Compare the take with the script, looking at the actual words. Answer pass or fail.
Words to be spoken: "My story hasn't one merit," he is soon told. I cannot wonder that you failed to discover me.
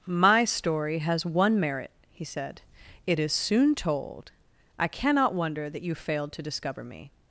fail